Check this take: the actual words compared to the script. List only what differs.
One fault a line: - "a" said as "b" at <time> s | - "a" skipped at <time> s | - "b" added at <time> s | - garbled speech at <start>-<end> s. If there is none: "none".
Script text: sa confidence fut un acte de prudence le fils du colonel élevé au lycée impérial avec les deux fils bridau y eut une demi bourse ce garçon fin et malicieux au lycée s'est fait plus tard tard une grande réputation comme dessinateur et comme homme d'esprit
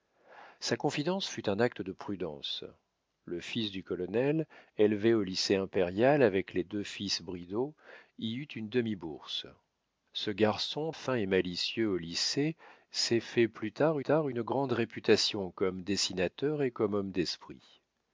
none